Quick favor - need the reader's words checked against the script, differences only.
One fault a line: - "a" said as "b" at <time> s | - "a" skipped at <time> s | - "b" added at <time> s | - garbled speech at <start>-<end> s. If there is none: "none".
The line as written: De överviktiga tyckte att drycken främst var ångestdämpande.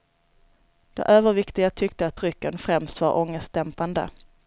none